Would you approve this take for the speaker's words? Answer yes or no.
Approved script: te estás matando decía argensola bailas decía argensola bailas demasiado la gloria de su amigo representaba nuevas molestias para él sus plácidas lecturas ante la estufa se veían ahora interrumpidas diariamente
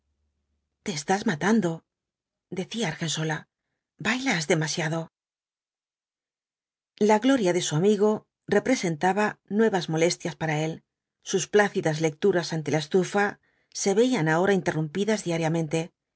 no